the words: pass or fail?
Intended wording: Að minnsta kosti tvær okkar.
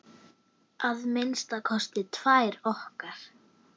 pass